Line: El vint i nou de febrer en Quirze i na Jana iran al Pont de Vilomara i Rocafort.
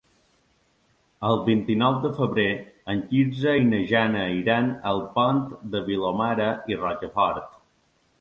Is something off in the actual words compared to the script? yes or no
no